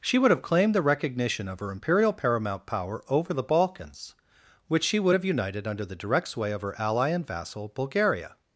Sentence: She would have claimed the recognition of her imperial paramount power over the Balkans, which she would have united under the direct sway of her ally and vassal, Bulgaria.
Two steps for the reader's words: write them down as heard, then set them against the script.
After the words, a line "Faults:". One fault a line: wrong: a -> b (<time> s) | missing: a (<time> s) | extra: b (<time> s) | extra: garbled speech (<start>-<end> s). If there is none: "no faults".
She would have claimed the recognition of her imperial paramount power over the Balkans, which she would have united under the direct sway of her ally and vassal, Bulgaria.
Faults:
no faults